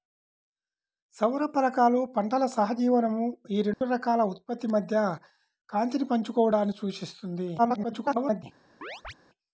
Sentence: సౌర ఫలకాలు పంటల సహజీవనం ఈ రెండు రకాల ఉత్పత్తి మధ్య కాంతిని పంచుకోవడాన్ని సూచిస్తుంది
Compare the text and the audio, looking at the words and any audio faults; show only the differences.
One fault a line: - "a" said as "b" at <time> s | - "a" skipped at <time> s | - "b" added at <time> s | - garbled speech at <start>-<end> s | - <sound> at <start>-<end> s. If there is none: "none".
- dropout at 3.7-3.8 s
- garbled speech at 7.6-8.4 s
- chirp at 8.8-9.1 s